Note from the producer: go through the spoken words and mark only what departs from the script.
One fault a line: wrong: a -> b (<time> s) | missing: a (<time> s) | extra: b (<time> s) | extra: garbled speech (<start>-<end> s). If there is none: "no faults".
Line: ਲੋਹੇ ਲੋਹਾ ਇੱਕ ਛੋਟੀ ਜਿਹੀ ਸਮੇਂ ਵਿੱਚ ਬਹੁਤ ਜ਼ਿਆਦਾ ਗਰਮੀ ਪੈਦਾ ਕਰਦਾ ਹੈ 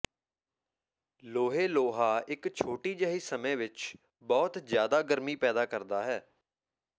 no faults